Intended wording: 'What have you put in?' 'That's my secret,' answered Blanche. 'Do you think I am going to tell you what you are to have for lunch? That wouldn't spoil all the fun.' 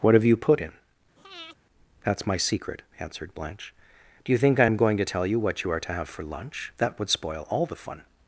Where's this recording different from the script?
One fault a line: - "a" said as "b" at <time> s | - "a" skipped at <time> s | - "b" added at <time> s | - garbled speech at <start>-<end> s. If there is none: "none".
- "wouldn't" said as "would" at 7.0 s